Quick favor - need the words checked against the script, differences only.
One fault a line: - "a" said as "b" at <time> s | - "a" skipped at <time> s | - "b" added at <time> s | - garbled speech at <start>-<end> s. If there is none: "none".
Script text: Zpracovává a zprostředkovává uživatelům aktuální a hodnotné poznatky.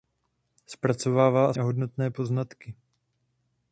- "zprostředkovává uživatelům aktuální" skipped at 1.5 s